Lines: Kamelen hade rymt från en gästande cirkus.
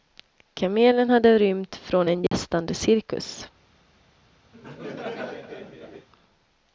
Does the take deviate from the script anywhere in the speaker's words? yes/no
no